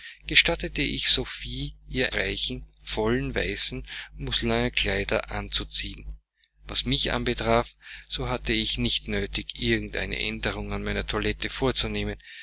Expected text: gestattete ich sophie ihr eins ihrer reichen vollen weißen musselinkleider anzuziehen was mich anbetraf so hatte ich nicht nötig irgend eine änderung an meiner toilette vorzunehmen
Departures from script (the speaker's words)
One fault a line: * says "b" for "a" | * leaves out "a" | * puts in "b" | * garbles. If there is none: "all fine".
* leaves out "eins ihrer"